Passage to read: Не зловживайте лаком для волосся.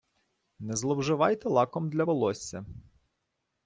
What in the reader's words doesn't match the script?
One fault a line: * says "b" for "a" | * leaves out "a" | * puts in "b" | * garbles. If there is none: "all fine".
all fine